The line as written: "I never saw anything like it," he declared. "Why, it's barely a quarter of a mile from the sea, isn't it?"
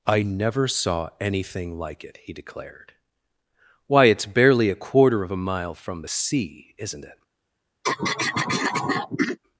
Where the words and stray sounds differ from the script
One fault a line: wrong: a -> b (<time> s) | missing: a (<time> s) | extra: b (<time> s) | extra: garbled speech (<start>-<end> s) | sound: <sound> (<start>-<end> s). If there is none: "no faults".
sound: throat clearing (7.8-9.4 s)